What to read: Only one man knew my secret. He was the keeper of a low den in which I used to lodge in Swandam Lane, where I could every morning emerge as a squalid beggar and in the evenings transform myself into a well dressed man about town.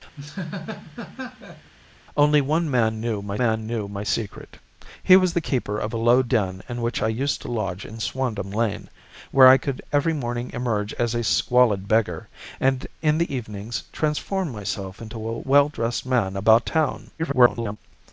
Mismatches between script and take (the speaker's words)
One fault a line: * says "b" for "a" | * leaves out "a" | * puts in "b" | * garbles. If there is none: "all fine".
* puts in "man knew my"
* garbles